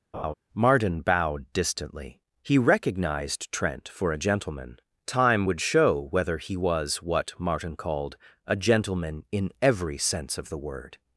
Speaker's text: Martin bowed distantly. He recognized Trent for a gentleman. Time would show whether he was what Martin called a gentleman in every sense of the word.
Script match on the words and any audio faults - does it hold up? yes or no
no